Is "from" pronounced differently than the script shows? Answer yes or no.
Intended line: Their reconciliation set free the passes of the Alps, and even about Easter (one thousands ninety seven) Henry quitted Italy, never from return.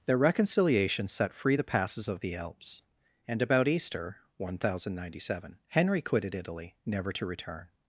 yes